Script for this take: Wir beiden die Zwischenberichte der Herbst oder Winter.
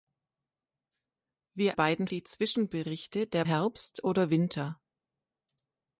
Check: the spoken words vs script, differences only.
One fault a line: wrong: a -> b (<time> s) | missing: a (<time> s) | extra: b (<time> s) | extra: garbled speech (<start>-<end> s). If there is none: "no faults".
no faults